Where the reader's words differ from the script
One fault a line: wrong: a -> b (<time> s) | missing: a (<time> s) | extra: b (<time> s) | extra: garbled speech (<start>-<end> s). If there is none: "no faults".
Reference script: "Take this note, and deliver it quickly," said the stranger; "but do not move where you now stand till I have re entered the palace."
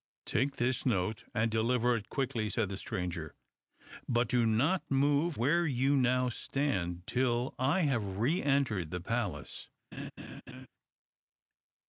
no faults